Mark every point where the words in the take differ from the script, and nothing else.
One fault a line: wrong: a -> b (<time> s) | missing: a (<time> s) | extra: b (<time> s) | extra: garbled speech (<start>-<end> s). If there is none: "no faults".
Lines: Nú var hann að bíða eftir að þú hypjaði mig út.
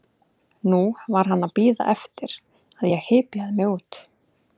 wrong: þú -> ég (2.9 s)